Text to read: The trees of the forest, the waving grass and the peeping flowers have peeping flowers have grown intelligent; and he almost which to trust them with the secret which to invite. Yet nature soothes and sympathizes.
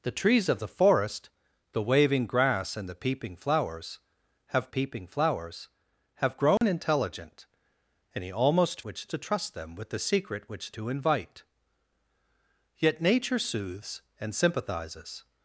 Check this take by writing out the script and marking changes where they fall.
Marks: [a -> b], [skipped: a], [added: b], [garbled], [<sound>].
The trees of the forest, the waving grass and the peeping flowers have peeping flowers have grown [dropout] intelligent; and he almost which to trust them with the secret which to invite. Yet nature soothes and sympathizes.